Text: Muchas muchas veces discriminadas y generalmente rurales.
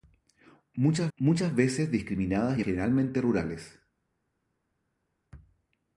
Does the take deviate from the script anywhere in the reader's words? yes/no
no